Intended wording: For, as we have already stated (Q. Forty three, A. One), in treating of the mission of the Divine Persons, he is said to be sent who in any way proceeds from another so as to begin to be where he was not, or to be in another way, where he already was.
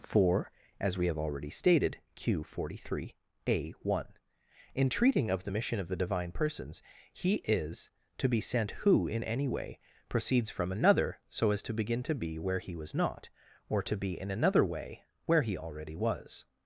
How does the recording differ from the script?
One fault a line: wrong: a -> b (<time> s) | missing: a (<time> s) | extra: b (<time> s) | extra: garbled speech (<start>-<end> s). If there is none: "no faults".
missing: said (7.9 s)